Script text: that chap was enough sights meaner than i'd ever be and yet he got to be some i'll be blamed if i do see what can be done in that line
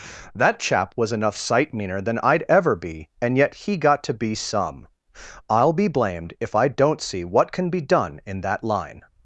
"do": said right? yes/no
no